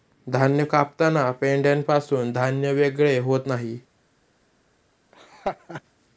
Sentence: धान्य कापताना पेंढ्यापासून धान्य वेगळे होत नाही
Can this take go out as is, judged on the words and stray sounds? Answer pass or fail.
fail